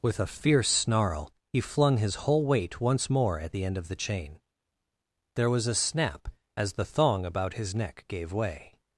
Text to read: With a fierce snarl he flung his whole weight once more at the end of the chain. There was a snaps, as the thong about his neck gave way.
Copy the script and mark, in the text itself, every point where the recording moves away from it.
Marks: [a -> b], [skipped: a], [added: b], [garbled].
With a fierce snarl he flung his whole weight once more at the end of the chain. There was a [snaps, -> snap] as the thong about his neck gave way.